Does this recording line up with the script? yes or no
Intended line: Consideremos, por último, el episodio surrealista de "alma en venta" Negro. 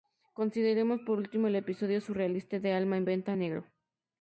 yes